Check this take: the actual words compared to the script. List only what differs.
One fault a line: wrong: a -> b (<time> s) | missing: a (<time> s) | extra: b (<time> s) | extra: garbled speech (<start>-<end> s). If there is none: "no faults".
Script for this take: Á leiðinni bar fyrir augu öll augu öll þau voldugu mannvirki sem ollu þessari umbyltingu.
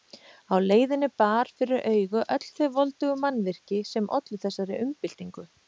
missing: augu öll (2.5 s)